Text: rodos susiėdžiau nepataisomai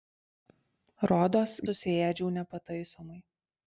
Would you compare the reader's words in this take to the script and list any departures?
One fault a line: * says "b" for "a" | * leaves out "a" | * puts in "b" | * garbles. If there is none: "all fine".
all fine